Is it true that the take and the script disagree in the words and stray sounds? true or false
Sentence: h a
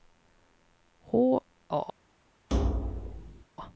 true